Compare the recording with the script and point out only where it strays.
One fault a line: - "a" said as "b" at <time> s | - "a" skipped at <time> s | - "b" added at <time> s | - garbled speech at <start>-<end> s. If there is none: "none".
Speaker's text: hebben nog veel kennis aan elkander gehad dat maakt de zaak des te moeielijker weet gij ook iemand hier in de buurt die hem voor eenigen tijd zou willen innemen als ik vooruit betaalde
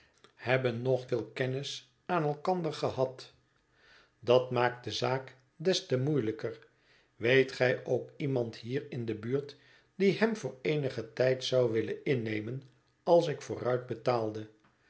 none